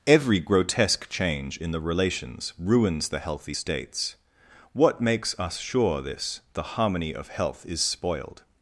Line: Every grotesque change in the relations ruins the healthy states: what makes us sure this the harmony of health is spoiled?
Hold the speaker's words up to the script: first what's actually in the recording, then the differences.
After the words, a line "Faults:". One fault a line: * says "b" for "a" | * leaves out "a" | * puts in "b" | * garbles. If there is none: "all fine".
Every grotesque change in the relations ruins the healthy states: what makes us sure this the harmony of health is spoiled?
Faults:
all fine